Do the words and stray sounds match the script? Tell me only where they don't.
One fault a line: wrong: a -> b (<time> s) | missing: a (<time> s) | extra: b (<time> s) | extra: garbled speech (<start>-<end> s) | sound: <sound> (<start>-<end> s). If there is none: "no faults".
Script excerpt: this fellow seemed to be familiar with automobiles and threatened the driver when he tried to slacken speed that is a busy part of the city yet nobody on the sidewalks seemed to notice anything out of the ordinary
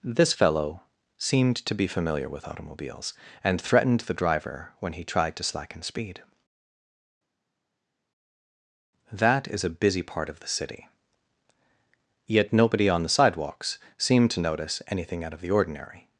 no faults